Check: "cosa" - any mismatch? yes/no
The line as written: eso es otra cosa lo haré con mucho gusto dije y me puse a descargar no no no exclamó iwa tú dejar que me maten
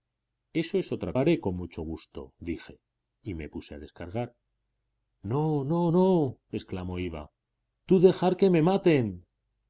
yes